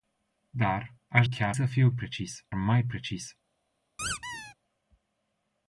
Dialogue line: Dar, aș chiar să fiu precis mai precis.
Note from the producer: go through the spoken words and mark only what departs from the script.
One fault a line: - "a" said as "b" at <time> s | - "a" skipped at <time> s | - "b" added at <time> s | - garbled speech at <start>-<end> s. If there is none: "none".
none